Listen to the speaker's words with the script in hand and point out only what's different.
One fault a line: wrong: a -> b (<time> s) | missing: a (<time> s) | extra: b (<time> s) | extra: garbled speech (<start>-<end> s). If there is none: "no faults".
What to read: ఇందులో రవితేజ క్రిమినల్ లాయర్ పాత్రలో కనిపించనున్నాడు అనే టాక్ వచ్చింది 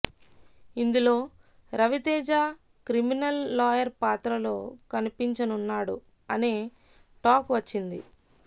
no faults